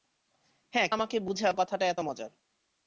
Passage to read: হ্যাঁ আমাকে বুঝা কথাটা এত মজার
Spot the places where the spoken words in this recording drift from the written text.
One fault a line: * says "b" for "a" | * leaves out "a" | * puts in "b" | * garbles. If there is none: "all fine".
all fine